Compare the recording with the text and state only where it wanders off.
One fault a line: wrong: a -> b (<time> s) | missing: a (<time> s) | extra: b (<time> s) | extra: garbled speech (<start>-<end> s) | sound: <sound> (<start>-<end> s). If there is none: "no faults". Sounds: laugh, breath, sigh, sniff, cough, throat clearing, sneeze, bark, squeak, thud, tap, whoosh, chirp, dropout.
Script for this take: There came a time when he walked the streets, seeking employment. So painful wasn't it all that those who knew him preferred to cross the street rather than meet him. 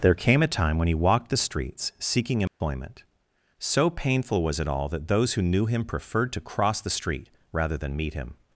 sound: dropout (2.5-2.6 s)
wrong: wasn't -> was (4.4 s)